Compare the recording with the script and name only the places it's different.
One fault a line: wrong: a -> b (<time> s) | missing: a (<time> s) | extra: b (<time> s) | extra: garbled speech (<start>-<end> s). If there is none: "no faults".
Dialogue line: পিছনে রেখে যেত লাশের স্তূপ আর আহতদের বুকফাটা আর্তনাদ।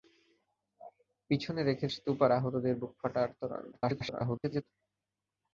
missing: যেত লাশের (1.9 s)
extra: garbled speech (3.7-4.6 s)